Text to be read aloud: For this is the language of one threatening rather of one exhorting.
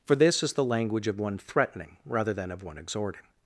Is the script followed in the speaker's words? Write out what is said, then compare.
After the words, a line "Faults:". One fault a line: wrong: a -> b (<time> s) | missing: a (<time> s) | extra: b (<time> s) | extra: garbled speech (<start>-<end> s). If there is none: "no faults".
For this is the language of one threatening rather than of one exhorting.
Faults:
extra: than (2.3 s)